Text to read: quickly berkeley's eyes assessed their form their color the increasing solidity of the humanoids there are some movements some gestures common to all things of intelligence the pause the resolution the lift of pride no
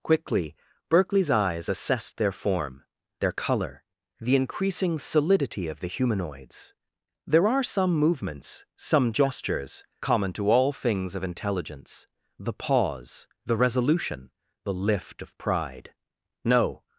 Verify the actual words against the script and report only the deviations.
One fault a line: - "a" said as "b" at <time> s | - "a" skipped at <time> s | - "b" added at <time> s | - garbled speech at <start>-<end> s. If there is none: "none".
none